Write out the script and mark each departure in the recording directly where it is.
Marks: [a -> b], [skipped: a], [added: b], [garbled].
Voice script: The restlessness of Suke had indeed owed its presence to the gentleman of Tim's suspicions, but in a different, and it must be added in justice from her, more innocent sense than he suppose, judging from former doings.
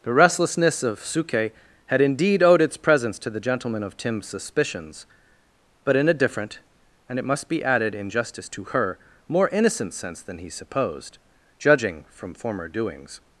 The restlessness of Suke had indeed owed its presence to the gentleman of Tim's suspicions, but in a different, and it must be added in justice [from -> to] her, more innocent sense than he [suppose, -> supposed] judging from former doings.